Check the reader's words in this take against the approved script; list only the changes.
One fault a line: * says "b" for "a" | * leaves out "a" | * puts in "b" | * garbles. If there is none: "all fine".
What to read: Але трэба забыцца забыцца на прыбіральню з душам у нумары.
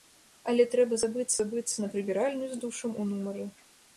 all fine